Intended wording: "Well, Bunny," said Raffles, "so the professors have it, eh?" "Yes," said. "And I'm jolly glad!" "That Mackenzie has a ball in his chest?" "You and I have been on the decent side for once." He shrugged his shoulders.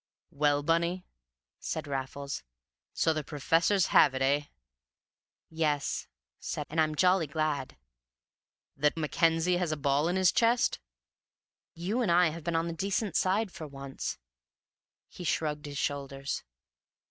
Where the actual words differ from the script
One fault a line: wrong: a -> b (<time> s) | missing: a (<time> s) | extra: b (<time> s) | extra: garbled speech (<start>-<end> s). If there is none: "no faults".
no faults